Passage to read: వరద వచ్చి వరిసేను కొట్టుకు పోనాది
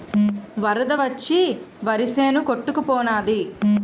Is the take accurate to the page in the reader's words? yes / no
yes